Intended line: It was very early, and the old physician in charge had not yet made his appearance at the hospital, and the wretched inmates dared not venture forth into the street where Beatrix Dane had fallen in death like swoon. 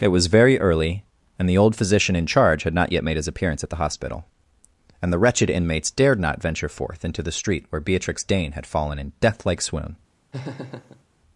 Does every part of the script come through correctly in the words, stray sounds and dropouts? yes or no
no